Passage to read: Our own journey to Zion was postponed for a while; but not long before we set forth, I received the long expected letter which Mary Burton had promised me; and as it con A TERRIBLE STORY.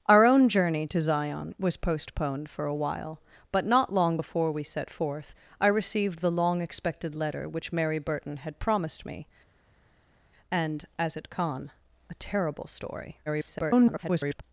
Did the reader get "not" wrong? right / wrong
right